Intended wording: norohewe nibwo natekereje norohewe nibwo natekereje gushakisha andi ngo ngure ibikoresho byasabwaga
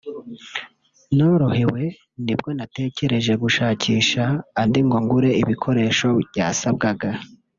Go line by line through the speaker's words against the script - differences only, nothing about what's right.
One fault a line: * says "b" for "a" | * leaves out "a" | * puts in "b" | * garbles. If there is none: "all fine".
* leaves out "norohewe nibwo natekereje"